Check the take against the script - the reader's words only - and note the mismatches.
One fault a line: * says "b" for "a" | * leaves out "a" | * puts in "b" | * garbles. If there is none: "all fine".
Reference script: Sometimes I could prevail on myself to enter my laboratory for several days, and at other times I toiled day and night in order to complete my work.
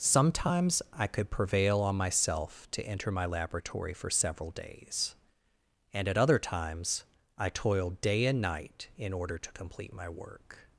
all fine